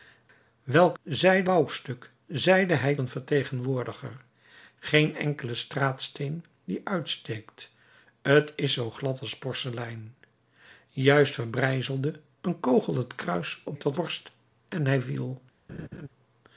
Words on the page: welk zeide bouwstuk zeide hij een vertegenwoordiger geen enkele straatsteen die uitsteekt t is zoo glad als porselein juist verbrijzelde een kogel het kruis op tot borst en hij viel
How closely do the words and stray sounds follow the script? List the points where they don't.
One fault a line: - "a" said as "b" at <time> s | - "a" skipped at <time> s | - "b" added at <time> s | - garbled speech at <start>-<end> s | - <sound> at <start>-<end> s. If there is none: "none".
- laugh at 15.7-16.1 s